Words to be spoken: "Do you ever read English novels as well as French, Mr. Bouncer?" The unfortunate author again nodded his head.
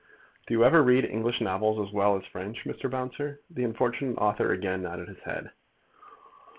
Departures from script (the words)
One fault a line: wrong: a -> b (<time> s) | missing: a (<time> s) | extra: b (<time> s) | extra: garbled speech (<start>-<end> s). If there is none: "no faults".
no faults